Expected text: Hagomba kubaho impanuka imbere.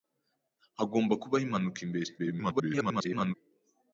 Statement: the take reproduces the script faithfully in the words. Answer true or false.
false